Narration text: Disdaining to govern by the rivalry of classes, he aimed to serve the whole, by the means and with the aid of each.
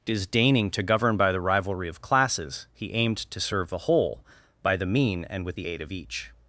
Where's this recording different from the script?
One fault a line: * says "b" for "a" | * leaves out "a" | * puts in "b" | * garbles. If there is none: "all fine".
* says "mean" for "means"